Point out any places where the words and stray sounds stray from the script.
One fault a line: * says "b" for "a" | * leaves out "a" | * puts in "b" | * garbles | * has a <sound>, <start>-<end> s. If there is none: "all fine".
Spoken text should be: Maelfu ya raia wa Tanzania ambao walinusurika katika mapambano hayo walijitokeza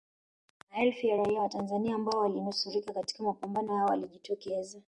all fine